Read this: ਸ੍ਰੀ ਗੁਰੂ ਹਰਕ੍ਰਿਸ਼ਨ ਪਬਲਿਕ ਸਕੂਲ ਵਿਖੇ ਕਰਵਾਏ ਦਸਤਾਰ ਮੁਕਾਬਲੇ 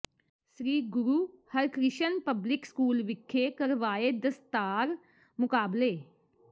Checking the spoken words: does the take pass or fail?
pass